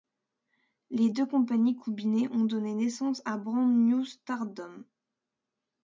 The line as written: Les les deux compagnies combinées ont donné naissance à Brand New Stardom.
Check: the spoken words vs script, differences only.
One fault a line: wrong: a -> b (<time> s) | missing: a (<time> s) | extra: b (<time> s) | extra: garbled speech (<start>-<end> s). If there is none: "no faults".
missing: les (1.1 s)